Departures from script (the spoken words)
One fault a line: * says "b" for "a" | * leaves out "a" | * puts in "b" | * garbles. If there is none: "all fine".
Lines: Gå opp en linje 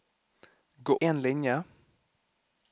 * leaves out "opp"